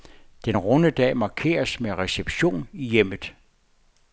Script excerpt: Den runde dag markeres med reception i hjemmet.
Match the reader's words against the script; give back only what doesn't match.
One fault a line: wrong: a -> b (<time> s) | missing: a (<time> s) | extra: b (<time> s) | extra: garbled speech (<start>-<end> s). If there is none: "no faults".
no faults